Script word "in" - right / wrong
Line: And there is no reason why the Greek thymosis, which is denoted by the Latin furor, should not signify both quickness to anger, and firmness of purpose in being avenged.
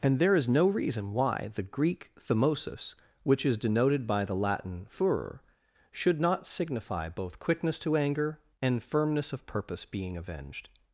wrong